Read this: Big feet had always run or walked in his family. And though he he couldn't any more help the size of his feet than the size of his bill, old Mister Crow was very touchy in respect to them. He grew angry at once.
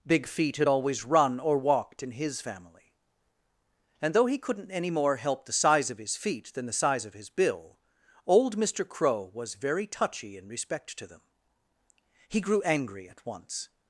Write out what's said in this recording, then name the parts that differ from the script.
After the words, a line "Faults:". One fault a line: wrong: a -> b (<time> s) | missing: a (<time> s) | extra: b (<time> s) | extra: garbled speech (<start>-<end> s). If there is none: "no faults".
Big feet had always run or walked in his family. And though he couldn't any more help the size of his feet than the size of his bill, old Mister Crow was very touchy in respect to them. He grew angry at once.
Faults:
missing: he (4.4 s)